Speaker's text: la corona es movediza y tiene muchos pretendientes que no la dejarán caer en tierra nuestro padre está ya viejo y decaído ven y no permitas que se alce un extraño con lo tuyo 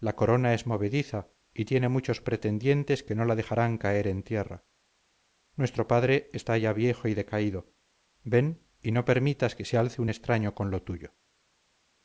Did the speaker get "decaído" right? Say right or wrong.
right